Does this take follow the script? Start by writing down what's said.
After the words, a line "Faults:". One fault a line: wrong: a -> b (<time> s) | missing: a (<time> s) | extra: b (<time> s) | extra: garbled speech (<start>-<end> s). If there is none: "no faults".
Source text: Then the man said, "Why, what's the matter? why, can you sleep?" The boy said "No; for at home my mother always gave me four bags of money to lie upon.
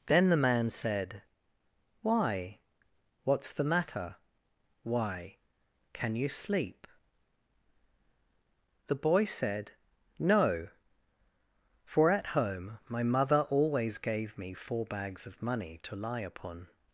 Then the man said, "Why, what's the matter? why, can you sleep?" The boy said "No; for at home my mother always gave me four bags of money to lie upon.
Faults:
no faults